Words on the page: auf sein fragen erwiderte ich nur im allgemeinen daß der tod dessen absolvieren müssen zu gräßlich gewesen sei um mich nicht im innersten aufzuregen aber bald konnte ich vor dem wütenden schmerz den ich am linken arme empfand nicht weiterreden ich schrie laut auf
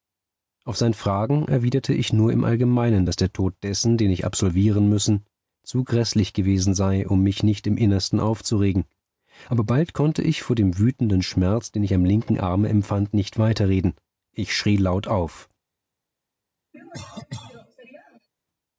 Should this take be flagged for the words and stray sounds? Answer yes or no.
yes